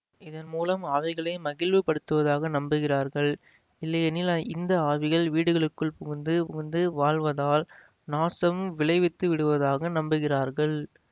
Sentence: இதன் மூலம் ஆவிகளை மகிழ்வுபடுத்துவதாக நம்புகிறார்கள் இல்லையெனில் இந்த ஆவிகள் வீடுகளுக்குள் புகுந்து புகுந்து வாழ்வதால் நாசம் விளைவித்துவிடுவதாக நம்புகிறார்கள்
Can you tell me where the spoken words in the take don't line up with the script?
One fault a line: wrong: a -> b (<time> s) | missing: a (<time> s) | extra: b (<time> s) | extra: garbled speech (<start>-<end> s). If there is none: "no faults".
no faults